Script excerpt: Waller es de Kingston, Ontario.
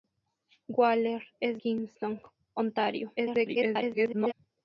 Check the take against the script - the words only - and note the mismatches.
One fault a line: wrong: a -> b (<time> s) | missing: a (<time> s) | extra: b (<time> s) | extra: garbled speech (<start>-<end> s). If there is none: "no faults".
missing: de (1.6 s)
extra: garbled speech (3.2-4.3 s)